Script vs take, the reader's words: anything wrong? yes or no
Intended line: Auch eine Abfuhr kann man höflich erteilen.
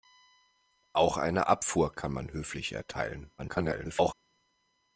yes